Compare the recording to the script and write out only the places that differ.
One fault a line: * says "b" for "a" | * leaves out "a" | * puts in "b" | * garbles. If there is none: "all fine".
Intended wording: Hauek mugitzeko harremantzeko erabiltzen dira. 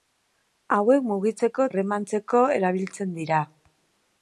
all fine